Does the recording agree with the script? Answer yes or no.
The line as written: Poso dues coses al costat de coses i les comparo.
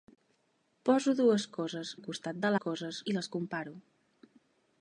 yes